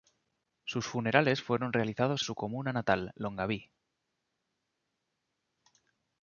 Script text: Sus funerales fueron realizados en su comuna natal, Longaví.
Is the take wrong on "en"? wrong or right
wrong